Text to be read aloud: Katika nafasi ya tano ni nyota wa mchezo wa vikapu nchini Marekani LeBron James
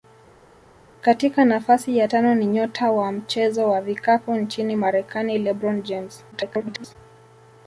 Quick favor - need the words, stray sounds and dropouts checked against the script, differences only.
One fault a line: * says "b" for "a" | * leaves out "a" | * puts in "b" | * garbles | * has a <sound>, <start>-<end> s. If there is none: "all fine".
* garbles